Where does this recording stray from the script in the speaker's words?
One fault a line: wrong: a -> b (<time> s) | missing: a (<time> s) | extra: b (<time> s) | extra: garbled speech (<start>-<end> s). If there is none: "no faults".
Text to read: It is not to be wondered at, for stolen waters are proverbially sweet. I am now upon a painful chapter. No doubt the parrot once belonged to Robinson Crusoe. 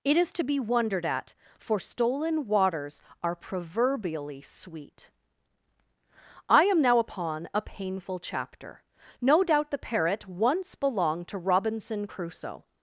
missing: not (0.3 s)